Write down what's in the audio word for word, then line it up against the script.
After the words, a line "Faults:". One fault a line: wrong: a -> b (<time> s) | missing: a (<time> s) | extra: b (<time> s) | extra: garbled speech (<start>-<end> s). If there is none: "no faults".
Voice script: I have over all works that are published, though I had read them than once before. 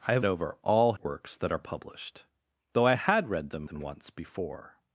I have over all works that are published, though I had read them than once before.
Faults:
no faults